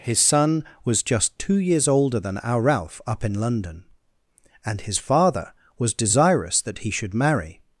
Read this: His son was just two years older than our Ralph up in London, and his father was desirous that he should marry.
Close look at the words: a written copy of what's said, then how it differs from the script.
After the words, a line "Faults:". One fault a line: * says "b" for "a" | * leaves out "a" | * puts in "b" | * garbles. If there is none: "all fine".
His son was just two years older than our Ralph up in London, and his father was desirous that he should marry.
Faults:
all fine